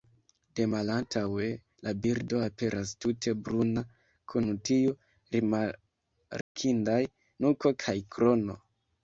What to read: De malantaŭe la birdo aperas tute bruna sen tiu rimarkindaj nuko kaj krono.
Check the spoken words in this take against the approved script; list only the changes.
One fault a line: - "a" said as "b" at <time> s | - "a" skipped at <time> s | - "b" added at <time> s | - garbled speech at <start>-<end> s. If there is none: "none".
- "sen" said as "kun" at 4.4 s